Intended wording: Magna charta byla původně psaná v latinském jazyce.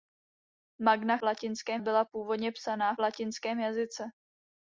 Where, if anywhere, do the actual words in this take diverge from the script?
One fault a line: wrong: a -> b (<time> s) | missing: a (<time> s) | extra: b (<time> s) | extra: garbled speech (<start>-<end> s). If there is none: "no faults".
wrong: charta -> latinském (1.2 s)
missing: v (2.9 s)